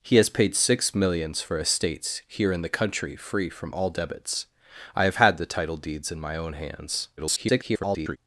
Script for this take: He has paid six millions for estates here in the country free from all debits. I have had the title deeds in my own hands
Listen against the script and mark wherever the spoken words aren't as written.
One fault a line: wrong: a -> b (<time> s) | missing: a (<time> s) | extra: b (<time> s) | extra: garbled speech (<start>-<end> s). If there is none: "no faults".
extra: garbled speech (7.2-8.2 s)